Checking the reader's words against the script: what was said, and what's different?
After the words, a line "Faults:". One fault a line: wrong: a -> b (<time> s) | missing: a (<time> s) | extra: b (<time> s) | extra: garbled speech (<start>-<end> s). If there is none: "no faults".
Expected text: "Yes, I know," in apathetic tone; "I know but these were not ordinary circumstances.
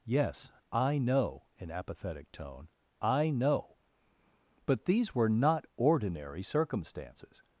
"Yes, I know," in apathetic tone; "I know but these were not ordinary circumstances.
Faults:
no faults